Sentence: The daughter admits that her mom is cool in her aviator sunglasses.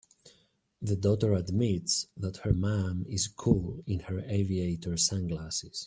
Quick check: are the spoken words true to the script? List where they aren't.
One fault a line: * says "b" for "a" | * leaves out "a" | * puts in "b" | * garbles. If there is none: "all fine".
all fine